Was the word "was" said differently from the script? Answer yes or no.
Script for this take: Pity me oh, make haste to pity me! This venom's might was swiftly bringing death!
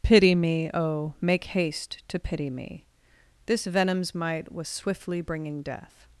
no